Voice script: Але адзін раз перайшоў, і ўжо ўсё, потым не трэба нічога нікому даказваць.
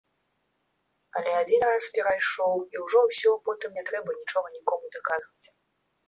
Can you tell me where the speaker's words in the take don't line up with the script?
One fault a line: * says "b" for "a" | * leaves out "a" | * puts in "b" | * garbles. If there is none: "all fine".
all fine